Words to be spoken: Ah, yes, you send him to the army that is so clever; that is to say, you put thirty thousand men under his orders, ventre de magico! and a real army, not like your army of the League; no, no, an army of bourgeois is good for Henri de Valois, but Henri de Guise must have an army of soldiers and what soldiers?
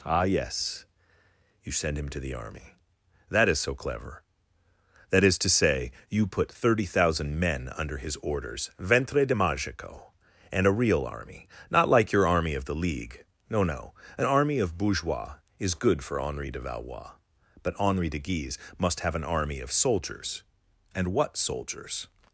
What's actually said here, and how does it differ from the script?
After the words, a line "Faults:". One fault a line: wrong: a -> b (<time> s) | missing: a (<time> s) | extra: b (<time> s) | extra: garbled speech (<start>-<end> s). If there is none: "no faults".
Ah, yes, you send him to the army that is so clever; that is to say, you put thirty thousand men under his orders, ventre de magico! and a real army, not like your army of the League; no, no, an army of bourgeois is good for Henri de Valois, but Henri de Guise must have an army of soldiers and what soldiers?
Faults:
no faults